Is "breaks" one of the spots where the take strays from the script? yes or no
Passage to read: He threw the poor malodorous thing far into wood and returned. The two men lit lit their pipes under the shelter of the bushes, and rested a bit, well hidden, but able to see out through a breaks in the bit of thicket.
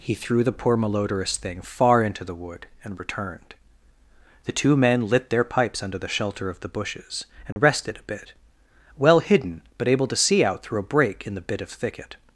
yes